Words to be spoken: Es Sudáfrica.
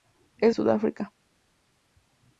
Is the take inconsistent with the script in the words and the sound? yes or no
no